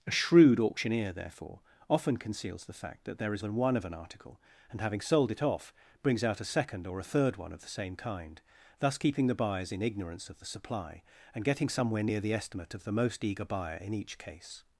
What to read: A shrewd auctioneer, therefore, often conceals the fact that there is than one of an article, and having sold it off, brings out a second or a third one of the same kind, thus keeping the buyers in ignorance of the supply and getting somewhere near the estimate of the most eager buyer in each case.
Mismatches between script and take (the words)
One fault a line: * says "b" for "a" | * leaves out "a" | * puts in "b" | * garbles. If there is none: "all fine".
all fine